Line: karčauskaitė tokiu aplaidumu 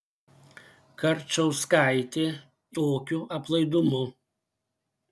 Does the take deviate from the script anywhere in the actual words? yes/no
no